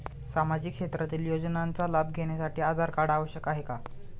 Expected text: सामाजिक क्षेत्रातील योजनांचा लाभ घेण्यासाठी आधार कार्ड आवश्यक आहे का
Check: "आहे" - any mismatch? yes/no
no